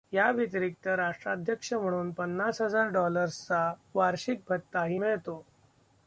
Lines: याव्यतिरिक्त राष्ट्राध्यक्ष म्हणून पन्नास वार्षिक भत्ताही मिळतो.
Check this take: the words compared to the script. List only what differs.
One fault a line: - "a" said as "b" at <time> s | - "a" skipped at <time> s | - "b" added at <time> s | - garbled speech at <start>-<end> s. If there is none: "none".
- "हजार डॉलर्सचा" added at 2.6 s